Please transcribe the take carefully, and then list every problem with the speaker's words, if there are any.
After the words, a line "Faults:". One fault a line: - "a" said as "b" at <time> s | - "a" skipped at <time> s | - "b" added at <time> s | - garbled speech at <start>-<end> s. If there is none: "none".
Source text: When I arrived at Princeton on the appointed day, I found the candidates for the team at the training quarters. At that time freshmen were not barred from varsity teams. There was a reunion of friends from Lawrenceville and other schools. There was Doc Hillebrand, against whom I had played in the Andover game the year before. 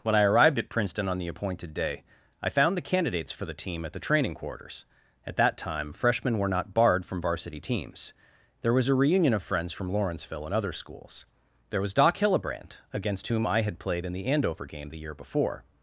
When I arrived at Princeton on the appointed day, I found the candidates for the team at the training quarters. At that time freshmen were not barred from varsity teams. There was a reunion of friends from Lawrenceville and other schools. There was Doc Hillebrand, against whom I had played in the Andover game the year before.
Faults:
none